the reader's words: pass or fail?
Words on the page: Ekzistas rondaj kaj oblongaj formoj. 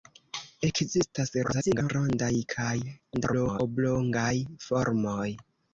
fail